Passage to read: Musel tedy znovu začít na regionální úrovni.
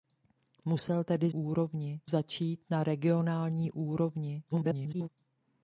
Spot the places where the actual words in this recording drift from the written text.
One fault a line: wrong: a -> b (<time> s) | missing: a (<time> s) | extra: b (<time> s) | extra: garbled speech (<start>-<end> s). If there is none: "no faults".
wrong: znovu -> úrovni (1.3 s)
extra: garbled speech (4.5-5.1 s)